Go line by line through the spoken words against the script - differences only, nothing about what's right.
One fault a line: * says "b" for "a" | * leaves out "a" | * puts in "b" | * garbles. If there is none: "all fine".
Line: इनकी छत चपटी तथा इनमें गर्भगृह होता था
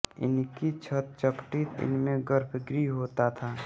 * leaves out "तथा"